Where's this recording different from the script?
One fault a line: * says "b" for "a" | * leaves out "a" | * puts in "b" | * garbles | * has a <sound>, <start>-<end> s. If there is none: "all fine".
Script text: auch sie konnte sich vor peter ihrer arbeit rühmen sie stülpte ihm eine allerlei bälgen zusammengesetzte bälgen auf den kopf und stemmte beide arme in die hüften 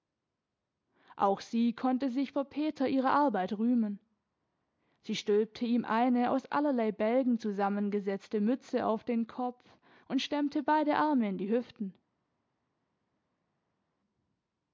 * puts in "aus"
* says "mütze" for "bälgen"